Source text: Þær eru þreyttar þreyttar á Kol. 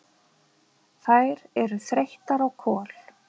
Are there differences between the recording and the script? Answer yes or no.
yes